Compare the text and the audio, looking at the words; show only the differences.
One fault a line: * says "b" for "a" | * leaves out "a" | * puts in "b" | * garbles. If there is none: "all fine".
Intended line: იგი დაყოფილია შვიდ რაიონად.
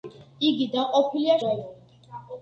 * leaves out "შვიდ"